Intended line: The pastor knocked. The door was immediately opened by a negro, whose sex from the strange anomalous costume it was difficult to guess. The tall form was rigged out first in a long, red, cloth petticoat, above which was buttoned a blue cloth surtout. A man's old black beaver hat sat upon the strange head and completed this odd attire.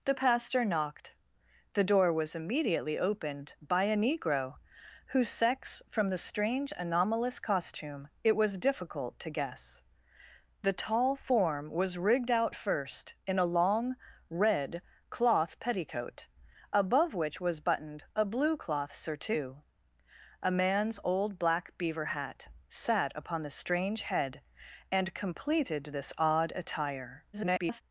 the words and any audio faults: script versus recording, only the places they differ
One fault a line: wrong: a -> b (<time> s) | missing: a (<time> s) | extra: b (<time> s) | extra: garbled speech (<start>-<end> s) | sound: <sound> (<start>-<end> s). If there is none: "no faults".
extra: garbled speech (27.3-27.8 s)